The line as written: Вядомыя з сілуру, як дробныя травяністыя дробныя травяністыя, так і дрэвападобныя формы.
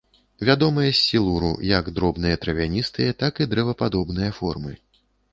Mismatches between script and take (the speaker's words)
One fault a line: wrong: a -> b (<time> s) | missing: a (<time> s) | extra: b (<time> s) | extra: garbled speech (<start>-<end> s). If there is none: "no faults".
missing: дробныя травяністыя (3.1 s)